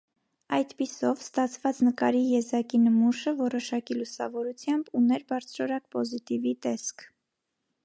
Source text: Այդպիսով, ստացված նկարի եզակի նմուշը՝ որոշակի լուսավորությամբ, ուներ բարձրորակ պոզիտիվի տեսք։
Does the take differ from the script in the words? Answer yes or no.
no